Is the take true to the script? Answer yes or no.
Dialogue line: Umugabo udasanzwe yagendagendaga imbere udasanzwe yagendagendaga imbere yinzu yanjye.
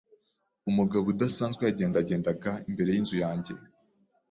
no